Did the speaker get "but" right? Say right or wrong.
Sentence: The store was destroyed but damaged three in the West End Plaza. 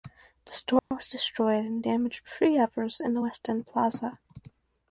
wrong